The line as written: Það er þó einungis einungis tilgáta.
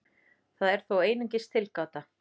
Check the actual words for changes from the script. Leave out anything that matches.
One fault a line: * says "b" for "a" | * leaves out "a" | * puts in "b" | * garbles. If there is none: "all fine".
* leaves out "einungis"